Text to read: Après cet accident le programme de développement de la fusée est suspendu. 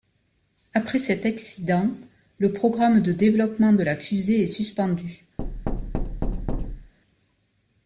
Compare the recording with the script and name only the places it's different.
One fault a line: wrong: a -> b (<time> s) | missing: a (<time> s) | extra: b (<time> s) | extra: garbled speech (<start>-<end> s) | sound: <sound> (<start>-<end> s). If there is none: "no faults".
sound: thud (5.4-6.9 s)